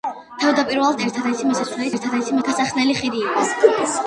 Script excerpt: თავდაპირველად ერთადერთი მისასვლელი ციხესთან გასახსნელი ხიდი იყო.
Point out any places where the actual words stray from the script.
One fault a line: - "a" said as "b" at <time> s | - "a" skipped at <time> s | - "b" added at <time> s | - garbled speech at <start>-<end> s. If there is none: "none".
- "ციხესთან" said as "ერთადერთი" at 1.9 s